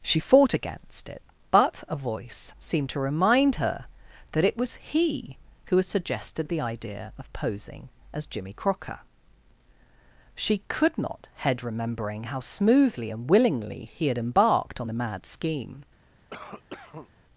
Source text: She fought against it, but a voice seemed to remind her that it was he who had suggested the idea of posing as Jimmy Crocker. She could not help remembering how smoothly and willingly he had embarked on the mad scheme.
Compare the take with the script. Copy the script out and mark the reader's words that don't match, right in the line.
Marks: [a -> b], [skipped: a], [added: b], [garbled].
She fought against it, but a voice seemed to remind her that it was he who had suggested the idea of posing as Jimmy Crocker. She could not [help -> head] remembering how smoothly and willingly he had embarked on the mad scheme.